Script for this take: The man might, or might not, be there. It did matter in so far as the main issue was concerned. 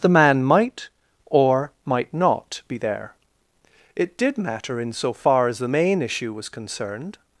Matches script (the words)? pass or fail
pass